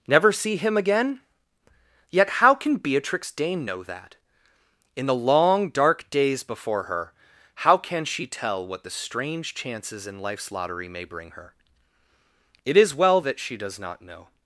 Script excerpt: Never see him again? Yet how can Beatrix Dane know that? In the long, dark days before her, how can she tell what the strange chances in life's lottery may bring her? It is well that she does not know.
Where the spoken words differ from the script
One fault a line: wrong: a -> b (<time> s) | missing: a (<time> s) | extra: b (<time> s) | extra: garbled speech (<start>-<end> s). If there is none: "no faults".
no faults